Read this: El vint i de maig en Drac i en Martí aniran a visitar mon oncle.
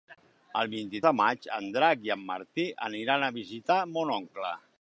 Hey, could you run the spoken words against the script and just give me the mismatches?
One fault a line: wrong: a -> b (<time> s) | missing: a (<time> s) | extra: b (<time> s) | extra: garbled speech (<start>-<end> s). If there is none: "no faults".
no faults